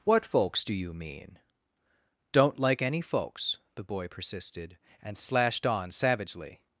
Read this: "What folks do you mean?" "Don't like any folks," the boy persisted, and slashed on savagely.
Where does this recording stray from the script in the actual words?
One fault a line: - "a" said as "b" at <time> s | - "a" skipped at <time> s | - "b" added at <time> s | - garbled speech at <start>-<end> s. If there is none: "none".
none